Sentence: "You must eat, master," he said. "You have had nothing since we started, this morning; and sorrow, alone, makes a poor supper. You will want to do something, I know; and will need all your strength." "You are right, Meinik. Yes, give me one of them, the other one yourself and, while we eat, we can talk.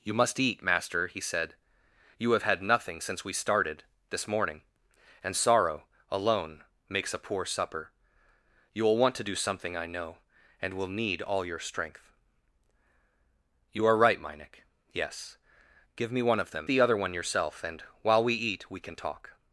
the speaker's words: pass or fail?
pass